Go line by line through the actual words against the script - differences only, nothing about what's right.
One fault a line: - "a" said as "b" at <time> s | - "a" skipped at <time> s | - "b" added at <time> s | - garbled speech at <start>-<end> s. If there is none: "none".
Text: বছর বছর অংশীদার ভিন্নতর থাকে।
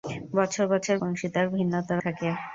none